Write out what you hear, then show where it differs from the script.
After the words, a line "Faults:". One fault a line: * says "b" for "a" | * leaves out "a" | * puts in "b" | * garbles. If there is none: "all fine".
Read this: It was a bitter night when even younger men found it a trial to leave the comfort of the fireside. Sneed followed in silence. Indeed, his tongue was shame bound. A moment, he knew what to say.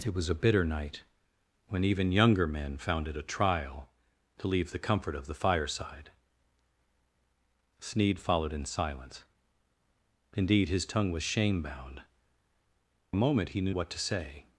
It was a bitter night when even younger men found it a trial to leave the comfort of the fireside. Sneed followed in silence. Indeed, his tongue was shame bound. A moment, he knew what to say.
Faults:
all fine